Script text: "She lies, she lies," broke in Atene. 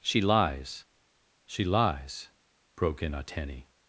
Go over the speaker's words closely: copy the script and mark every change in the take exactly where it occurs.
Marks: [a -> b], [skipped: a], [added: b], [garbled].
"She lies, she lies," broke in Atene.